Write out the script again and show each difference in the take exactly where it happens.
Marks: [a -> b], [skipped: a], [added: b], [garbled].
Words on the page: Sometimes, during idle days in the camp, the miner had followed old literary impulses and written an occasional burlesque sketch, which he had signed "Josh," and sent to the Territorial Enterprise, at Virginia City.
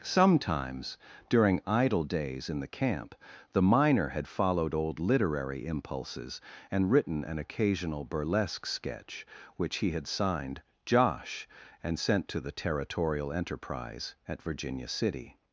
Sometimes, during idle days in the camp, the miner had followed old literary impulses and written an occasional burlesque sketch, which he had signed "Josh," and sent to the Territorial Enterprise, at Virginia City.